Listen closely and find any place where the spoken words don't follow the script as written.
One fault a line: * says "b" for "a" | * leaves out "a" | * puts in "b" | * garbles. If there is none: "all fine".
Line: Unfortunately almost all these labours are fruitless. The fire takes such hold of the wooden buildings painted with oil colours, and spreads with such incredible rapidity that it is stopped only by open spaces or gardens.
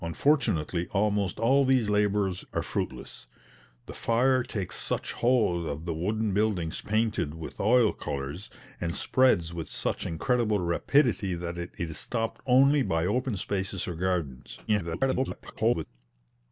* garbles